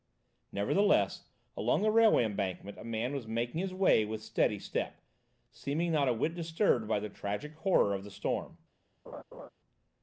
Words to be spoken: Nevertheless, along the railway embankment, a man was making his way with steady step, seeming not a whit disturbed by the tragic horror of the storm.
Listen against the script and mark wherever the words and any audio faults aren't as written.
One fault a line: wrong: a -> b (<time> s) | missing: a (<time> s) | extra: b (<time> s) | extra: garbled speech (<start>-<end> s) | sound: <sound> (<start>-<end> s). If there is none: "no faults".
sound: laugh (9.1-9.5 s)